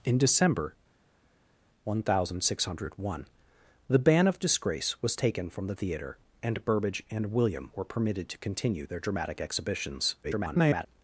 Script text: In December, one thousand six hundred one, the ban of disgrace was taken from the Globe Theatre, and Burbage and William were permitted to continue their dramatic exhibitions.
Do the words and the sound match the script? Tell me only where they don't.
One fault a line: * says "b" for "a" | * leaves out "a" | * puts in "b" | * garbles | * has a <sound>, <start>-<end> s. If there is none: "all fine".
* leaves out "Globe"
* garbles